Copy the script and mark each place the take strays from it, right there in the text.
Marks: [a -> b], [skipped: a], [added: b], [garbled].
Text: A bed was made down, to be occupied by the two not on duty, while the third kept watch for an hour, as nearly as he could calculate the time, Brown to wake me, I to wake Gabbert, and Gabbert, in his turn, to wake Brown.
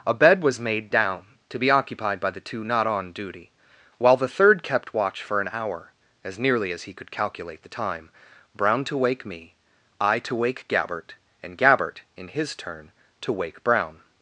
A bed was made down, to be occupied by the two not on duty, while the third kept watch for an hour, as nearly as he could calculate the time, Brown to wake me, I to wake Gabbert, and Gabbert, in his turn, to wake Brown.